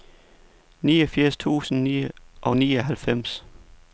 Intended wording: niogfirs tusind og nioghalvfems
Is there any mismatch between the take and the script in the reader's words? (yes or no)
no